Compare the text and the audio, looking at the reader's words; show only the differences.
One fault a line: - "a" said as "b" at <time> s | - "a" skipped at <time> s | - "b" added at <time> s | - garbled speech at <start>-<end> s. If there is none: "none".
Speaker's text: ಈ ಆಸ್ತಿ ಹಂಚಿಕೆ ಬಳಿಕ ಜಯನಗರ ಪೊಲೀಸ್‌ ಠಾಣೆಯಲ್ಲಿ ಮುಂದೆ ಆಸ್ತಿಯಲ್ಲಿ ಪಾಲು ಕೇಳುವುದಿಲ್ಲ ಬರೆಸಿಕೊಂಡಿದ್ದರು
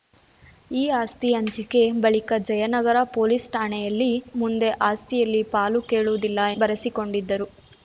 none